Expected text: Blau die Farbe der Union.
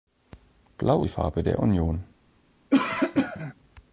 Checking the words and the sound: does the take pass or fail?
fail